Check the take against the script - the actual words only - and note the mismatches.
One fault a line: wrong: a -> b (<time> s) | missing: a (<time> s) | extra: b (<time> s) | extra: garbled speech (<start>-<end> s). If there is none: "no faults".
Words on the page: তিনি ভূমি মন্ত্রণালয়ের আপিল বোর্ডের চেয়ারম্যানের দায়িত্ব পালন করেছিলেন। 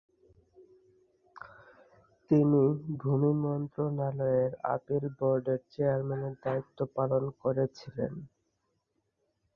no faults